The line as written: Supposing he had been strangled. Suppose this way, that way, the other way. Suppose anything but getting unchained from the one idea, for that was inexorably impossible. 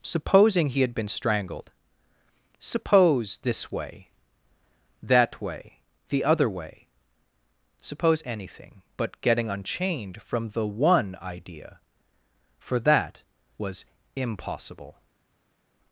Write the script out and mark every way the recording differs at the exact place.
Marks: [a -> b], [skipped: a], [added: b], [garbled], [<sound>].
Supposing he had been strangled. Suppose this way, that way, the other way. Suppose anything but getting unchained from the one idea, for that was [skipped: inexorably] impossible.